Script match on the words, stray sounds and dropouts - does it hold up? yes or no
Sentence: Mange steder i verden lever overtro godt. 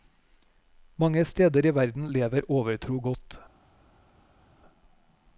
yes